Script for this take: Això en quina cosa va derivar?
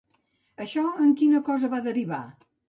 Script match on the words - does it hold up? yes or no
yes